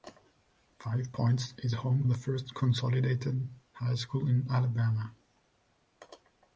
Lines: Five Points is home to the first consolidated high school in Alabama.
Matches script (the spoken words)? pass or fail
fail